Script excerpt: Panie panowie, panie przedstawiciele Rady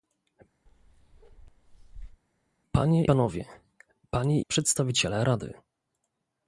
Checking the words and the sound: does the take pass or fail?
fail